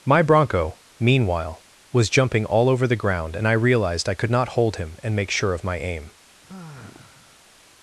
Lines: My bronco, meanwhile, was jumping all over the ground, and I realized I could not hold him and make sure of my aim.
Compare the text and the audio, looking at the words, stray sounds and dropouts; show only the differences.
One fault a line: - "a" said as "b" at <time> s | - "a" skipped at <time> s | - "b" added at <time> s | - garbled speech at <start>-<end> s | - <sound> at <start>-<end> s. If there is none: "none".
- sigh at 6.4-7.5 s